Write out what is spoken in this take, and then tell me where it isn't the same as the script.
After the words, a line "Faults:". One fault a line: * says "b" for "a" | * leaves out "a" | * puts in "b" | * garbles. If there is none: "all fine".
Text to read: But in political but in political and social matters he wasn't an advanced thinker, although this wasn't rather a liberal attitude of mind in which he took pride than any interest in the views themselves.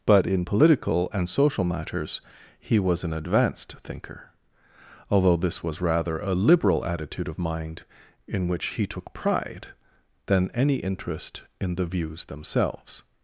But in political and social matters he was an advanced thinker, although this was rather a liberal attitude of mind in which he took pride than any interest in the views themselves.
Faults:
* leaves out "but in political"
* says "was" for "wasn't"
* says "was" for "wasn't"